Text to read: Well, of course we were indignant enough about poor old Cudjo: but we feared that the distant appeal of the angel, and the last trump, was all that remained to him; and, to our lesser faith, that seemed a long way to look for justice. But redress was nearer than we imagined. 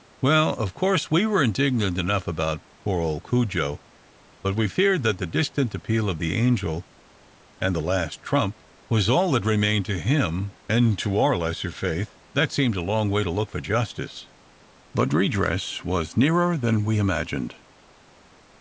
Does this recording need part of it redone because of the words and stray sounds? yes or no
no